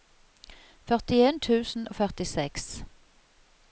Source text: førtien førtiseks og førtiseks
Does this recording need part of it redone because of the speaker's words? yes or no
yes